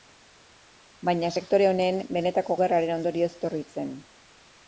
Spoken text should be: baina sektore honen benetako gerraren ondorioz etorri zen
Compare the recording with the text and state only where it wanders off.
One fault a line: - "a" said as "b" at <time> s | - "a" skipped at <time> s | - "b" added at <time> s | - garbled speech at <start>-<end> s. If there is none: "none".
none